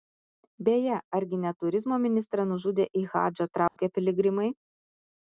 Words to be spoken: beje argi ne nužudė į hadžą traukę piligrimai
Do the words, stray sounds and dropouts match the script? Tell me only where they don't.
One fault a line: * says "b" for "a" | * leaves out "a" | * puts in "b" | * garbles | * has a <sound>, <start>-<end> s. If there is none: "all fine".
* puts in "turizmo ministrą"
* has a dropout, 3.7-3.8 s